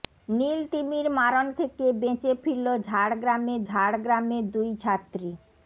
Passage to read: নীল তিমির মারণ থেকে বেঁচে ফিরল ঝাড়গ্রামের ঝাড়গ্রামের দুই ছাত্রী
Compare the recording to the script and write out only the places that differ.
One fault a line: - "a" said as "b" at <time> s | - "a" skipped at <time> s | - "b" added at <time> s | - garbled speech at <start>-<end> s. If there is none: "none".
none